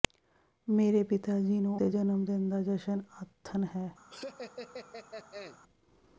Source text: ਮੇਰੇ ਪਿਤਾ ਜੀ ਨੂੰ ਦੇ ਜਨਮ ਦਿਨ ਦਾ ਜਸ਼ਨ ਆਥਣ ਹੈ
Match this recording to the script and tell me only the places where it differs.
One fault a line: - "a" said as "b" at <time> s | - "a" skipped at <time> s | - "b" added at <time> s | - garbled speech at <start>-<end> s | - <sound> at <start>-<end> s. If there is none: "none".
- laugh at 4.1-5.6 s